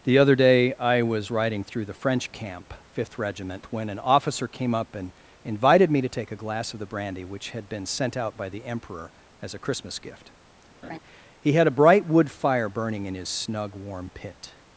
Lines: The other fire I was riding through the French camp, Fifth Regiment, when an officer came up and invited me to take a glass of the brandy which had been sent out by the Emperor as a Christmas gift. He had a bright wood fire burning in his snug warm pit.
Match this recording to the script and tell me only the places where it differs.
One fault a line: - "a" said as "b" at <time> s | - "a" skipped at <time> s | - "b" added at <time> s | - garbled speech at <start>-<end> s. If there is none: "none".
- "fire" said as "day" at 0.3 s